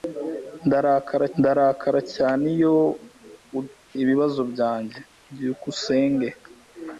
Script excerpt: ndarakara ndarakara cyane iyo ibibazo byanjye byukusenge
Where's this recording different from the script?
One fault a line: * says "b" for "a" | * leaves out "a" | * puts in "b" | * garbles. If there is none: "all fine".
all fine